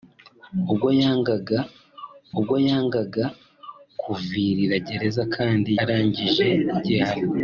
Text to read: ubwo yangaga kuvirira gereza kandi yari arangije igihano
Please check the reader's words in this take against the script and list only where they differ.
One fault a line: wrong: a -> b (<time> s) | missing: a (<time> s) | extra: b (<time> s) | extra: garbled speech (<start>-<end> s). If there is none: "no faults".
extra: ubwo yangaga (2.4 s)
missing: yari (5.7 s)